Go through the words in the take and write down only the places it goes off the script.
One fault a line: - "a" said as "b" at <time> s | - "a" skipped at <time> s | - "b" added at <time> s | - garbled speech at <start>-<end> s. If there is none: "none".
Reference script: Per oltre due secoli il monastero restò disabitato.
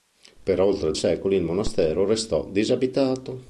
- "due" skipped at 0.9 s